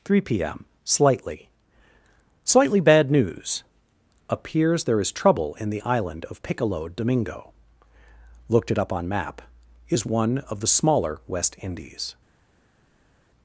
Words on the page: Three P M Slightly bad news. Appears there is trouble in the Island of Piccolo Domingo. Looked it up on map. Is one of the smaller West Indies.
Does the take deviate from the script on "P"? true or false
false